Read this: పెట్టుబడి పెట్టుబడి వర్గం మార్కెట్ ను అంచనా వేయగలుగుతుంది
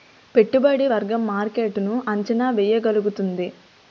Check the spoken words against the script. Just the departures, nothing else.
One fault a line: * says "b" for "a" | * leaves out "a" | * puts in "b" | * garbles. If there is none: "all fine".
* leaves out "పెట్టుబడి"